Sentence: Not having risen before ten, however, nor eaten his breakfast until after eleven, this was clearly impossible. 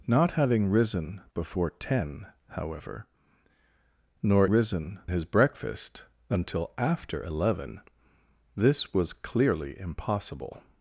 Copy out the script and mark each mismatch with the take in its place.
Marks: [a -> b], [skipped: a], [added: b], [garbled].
Not having risen before ten, however, nor [eaten -> risen] his breakfast until after eleven, this was clearly impossible.